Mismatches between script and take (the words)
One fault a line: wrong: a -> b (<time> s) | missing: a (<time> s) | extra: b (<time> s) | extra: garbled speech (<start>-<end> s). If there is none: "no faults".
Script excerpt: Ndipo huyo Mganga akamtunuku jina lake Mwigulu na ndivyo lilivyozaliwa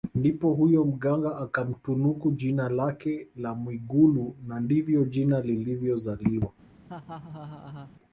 extra: la (3.3 s)
extra: jina (5.0 s)